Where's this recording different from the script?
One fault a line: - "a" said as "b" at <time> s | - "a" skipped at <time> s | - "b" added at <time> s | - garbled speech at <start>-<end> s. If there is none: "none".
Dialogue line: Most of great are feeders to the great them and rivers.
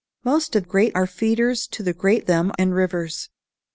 none